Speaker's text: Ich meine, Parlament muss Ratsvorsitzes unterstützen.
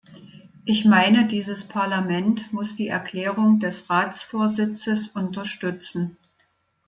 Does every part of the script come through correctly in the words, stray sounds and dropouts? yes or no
no